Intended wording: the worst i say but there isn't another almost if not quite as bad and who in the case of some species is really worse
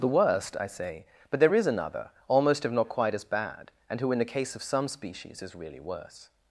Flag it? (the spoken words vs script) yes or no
yes